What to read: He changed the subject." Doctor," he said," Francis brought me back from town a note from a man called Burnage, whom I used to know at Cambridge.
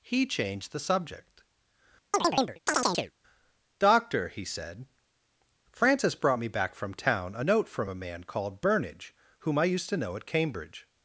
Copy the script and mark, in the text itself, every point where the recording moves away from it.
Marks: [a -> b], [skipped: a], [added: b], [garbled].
He changed the subject." Doctor," he said," Francis brought me back from town a note from a man called Burnage, whom I used to know at Cambridge.